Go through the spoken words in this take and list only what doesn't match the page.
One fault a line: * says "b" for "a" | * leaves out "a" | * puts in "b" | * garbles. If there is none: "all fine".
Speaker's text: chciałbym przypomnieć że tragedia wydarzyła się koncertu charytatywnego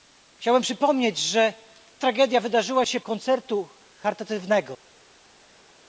all fine